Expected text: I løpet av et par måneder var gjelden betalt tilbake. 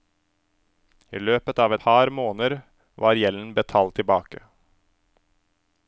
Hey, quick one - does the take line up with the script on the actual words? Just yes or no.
no